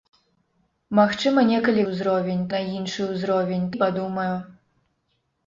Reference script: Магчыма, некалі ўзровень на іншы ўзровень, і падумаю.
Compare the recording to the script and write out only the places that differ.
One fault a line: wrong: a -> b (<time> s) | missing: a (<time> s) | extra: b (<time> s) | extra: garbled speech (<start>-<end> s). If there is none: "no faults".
no faults